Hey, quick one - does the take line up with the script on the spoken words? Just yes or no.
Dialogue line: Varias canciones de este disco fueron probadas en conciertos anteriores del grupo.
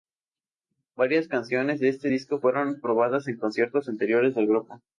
yes